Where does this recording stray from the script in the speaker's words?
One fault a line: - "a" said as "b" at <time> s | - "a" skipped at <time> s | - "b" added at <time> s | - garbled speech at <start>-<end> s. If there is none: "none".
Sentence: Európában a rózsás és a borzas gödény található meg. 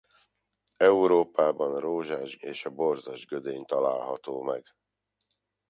none